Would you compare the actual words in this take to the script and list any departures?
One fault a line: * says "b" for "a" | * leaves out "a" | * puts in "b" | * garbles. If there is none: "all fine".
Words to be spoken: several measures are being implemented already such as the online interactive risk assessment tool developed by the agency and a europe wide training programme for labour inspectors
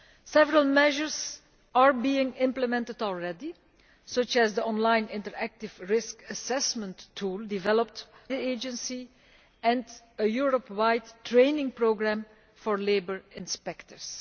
* leaves out "by"